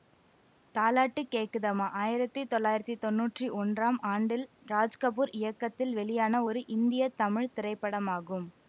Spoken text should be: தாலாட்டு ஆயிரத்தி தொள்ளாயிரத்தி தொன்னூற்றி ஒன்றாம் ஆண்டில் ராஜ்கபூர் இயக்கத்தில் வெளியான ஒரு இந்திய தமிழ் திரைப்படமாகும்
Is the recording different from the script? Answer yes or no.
yes